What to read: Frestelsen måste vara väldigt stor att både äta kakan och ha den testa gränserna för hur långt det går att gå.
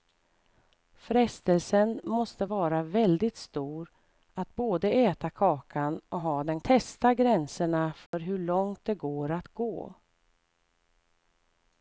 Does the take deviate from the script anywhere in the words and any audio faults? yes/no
yes